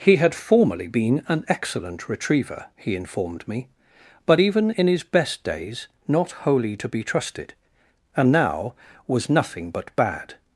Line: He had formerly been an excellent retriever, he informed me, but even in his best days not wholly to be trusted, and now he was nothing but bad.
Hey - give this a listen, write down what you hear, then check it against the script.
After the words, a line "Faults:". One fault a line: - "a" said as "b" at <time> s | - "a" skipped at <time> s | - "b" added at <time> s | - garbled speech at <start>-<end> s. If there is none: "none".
He had formerly been an excellent retriever, he informed me, but even in his best days not wholly to be trusted, and now was nothing but bad.
Faults:
- "he" skipped at 8.7 s